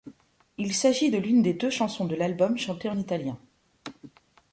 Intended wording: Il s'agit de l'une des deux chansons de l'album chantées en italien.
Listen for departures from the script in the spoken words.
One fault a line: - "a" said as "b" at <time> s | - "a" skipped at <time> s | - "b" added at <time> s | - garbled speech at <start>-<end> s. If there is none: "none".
none